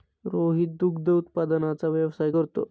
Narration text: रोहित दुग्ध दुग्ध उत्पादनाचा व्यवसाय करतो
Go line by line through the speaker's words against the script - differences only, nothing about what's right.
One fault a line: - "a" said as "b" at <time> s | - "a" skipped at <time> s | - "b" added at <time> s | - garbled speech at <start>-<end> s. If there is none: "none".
- "दुग्ध" skipped at 1.1 s